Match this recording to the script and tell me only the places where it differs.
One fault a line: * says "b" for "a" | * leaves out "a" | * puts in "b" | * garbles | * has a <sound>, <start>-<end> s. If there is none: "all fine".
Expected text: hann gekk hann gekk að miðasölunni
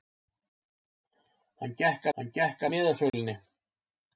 * has a dropout, 3.1-3.1 s